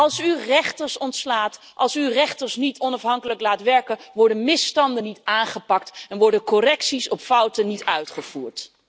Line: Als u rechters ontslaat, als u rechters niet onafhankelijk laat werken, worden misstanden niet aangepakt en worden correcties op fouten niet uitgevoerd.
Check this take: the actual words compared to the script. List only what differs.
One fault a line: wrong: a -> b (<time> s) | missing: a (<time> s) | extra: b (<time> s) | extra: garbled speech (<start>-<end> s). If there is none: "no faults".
no faults